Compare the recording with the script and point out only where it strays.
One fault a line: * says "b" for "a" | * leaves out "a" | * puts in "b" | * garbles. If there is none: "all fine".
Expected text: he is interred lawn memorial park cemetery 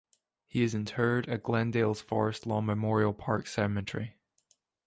* puts in "at glendale's forest"